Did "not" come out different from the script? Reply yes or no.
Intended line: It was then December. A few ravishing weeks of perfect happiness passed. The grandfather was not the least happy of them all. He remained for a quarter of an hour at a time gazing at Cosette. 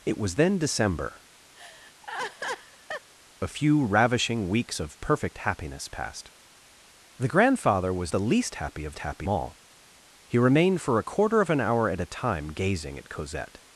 yes